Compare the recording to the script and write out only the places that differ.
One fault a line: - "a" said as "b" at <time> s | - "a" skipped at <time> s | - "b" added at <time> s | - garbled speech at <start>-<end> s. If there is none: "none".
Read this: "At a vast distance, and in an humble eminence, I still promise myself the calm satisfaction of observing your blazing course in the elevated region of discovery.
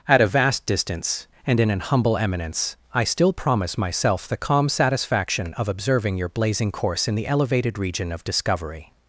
none